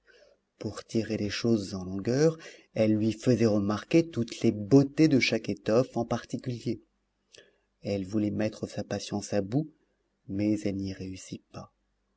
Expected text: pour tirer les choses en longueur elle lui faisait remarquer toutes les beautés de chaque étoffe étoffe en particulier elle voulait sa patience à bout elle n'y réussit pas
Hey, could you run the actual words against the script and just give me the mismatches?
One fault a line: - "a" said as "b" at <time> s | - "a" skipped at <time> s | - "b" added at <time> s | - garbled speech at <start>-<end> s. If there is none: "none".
- "étoffe" skipped at 6.0 s
- "mettre" added at 8.3 s
- "mais" added at 10.3 s